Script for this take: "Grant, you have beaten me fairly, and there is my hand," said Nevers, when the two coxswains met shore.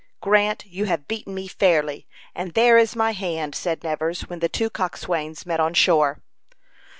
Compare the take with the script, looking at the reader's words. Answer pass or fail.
fail